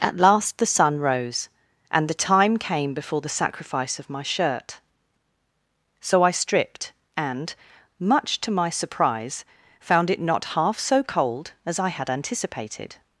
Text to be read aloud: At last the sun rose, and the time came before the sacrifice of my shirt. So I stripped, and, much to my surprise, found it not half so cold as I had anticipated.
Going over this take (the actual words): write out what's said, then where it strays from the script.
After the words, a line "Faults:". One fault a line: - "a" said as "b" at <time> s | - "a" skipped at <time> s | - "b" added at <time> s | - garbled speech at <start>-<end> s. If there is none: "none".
At last the sun rose, and the time came before the sacrifice of my shirt. So I stripped, and, much to my surprise, found it not half so cold as I had anticipated.
Faults:
none